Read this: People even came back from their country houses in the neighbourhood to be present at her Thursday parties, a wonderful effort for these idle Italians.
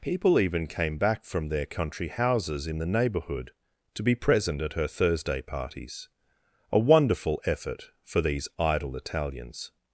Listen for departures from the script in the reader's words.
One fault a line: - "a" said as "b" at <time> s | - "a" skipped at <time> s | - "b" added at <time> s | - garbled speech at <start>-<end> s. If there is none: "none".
none